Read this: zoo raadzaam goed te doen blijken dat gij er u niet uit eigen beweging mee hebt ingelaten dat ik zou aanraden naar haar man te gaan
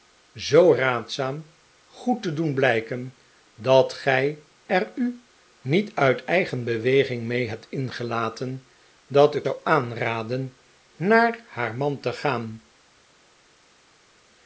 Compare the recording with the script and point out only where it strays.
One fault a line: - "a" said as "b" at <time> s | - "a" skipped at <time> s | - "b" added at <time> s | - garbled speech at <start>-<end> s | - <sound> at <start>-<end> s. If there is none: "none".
none